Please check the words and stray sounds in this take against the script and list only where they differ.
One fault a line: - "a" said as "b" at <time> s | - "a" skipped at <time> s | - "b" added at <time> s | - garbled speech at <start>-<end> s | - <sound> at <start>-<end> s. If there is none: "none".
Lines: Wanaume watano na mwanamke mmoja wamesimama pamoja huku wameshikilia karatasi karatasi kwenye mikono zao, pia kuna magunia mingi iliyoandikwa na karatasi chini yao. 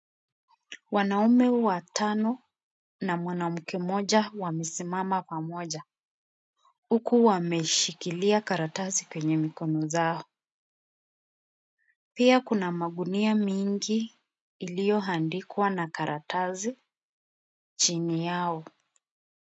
- "karatasi" skipped at 9.1 s